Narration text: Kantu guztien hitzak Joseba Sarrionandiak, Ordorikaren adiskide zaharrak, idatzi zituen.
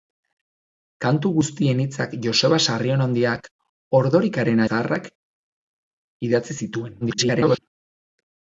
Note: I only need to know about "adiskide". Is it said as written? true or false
false